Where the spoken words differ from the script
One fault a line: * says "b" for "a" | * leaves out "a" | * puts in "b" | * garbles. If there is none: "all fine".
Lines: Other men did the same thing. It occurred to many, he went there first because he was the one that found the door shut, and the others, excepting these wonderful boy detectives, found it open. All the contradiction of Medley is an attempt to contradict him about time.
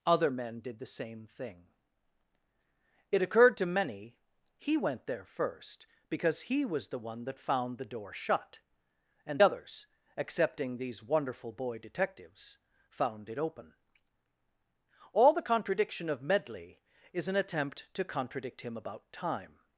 * leaves out "the"